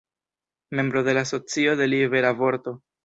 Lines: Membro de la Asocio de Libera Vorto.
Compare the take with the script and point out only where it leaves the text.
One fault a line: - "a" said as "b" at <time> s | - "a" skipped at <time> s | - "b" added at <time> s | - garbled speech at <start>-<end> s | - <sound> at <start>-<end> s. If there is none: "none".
none